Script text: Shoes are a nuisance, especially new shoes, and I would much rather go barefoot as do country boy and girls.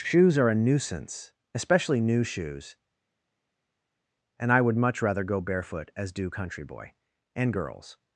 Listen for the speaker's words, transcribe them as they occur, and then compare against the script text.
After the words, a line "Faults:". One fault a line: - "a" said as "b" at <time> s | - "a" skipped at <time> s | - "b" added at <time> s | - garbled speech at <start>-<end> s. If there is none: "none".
Shoes are a nuisance, especially new shoes, and I would much rather go barefoot as do country boy and girls.
Faults:
none